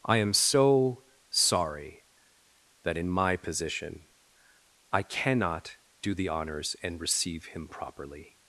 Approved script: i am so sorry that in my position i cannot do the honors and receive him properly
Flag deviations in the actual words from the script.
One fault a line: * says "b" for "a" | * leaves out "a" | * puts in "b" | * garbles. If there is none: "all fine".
all fine